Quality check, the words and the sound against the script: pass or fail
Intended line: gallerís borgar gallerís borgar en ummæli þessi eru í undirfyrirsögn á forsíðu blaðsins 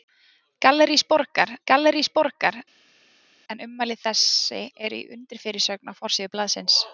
pass